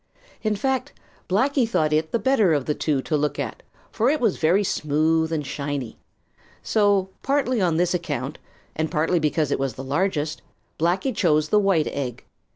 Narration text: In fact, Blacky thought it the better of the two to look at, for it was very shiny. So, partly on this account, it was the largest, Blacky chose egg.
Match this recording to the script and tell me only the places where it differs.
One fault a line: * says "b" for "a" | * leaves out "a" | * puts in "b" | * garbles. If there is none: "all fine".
* puts in "smooth and"
* puts in "and partly because"
* puts in "the white"